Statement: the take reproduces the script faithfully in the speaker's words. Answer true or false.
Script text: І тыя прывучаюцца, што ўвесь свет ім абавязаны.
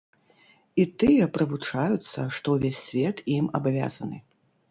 true